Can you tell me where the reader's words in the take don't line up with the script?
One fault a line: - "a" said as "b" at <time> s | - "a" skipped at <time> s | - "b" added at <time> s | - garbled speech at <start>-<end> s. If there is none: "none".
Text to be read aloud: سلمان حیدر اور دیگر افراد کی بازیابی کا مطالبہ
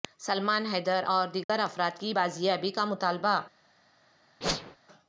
none